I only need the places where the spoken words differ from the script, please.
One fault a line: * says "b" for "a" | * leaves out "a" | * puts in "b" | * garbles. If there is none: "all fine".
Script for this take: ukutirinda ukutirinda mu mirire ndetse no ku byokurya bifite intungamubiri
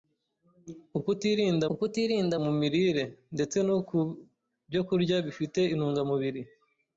all fine